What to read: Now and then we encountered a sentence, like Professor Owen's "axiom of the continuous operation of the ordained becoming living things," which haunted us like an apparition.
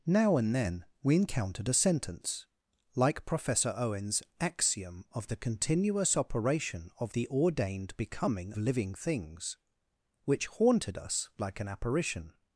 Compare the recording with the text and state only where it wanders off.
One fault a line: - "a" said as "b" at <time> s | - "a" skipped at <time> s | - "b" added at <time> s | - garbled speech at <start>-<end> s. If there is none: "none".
none